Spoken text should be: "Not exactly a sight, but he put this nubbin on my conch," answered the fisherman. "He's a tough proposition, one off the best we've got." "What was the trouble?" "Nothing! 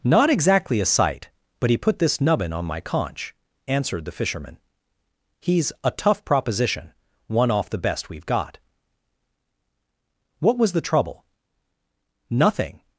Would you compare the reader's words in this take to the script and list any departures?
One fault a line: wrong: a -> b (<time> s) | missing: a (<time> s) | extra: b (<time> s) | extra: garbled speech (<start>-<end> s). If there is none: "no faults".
no faults